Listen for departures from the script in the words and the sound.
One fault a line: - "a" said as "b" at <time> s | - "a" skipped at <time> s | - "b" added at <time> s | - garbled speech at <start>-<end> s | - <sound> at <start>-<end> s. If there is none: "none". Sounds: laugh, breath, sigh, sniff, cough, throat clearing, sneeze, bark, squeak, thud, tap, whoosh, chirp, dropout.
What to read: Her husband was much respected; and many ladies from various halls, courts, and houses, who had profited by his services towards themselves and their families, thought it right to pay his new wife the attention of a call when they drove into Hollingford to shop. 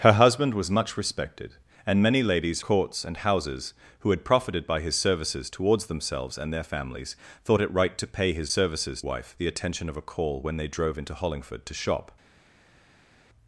- "from various halls" skipped at 2.6 s
- "new" said as "services" at 8.5 s